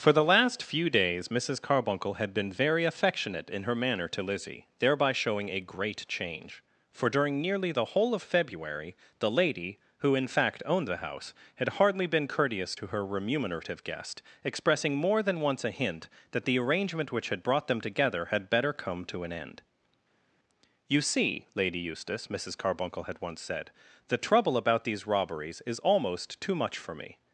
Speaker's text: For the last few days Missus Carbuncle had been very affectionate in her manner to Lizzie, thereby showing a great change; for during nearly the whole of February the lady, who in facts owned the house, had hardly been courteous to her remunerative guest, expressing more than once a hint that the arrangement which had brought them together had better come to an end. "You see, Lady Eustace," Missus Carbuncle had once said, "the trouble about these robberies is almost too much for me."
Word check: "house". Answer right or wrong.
right